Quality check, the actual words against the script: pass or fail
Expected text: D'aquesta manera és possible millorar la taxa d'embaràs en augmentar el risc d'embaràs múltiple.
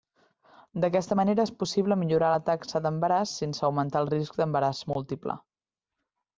fail